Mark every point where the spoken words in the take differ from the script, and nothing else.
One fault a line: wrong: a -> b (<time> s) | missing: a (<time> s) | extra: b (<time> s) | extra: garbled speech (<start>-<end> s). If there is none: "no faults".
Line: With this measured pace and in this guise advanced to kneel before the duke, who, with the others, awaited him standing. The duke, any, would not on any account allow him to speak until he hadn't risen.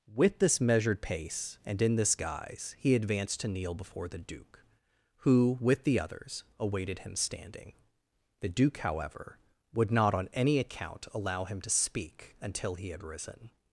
extra: he (2.8 s)
wrong: any -> however (8.8 s)
wrong: hadn't -> had (12.9 s)